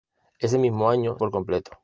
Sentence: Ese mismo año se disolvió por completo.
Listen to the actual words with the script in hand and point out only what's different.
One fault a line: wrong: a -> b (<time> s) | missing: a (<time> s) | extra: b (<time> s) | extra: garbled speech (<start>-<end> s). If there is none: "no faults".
missing: se disolvió (1.2 s)